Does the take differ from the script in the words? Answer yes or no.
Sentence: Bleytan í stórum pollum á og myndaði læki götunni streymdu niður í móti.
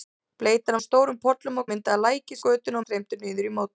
no